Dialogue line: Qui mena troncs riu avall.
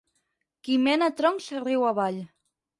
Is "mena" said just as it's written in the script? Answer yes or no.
yes